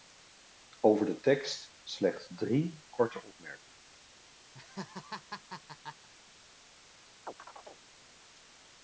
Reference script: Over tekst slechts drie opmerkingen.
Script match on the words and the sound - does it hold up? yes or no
no